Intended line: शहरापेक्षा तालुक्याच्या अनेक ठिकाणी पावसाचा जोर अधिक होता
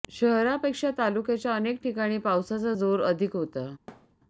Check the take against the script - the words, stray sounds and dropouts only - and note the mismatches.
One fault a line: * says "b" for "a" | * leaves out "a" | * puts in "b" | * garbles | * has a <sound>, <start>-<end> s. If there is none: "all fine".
* has a thud, 3.9-4.2 s